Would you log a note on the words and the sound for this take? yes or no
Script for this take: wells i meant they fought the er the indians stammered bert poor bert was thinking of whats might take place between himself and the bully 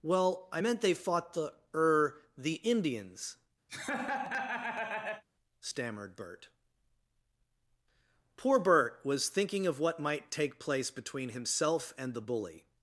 yes